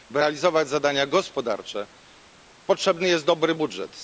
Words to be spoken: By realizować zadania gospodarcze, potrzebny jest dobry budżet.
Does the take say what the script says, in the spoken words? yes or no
yes